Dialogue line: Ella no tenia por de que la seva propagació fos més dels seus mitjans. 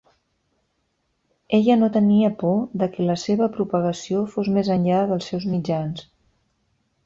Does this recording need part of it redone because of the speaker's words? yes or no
yes